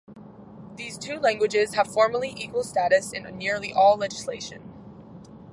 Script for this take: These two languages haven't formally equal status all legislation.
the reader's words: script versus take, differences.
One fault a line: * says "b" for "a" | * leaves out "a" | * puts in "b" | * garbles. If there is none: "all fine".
* says "have" for "haven't"
* puts in "in nearly"